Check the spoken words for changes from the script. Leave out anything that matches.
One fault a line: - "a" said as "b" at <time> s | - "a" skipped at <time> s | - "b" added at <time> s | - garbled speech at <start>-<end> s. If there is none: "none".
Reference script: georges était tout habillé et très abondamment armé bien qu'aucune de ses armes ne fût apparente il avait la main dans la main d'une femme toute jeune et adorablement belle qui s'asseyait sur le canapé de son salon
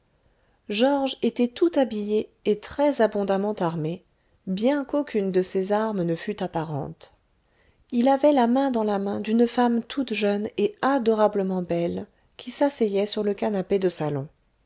- "son" skipped at 13.9 s